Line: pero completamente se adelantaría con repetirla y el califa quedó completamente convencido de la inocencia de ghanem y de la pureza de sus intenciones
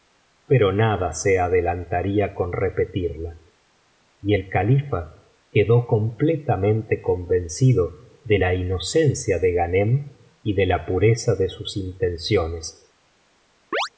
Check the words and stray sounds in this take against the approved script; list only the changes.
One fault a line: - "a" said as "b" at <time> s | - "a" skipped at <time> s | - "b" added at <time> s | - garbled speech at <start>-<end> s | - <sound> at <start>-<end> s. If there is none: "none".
- "completamente" said as "nada" at 0.7 s
- chirp at 13.7-13.9 s